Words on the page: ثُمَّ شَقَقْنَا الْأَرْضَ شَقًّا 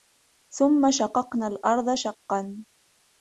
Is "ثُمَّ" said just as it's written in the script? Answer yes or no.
yes